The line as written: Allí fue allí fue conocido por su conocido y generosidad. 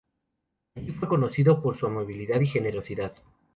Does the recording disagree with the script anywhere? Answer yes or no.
yes